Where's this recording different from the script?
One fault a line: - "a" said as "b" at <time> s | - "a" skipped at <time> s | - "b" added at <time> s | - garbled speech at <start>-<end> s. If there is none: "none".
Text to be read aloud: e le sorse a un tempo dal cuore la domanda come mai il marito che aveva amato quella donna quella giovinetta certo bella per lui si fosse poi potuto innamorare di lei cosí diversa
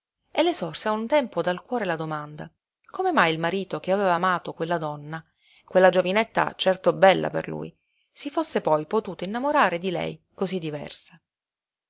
none